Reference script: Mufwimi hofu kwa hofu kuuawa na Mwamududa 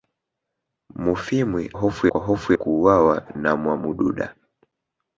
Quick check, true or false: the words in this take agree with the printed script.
true